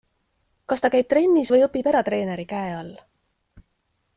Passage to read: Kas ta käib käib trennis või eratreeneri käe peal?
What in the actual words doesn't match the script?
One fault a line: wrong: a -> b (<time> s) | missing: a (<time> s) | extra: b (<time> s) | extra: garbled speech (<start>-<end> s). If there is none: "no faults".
missing: käib (1.1 s)
extra: õpib (1.7 s)
wrong: peal -> all (2.8 s)